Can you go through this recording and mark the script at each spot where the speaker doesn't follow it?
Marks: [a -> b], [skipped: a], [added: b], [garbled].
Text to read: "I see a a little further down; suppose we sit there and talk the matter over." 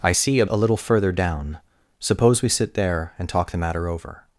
"I see a a little further down; suppose we sit there and talk the matter over."